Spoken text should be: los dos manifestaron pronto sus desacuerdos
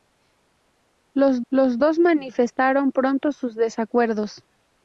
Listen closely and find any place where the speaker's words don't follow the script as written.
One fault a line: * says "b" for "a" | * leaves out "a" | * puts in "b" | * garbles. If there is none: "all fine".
* puts in "los"